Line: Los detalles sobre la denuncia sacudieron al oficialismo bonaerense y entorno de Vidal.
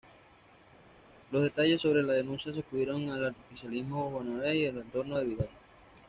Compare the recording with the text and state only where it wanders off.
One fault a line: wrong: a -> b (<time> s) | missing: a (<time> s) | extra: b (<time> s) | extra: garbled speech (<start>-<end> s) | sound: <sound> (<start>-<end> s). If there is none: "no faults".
extra: al (4.7 s)